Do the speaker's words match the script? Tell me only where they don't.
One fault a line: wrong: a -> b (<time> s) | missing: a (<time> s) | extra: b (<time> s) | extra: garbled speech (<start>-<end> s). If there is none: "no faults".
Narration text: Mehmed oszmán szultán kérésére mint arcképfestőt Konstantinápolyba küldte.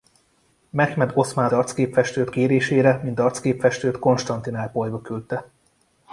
wrong: szultán -> arcképfestőt (1.5 s)